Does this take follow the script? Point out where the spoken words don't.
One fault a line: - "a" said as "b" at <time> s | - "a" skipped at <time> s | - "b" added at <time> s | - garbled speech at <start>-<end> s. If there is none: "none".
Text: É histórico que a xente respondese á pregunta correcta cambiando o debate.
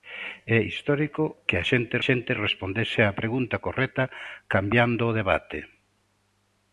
- "xente" added at 2.1 s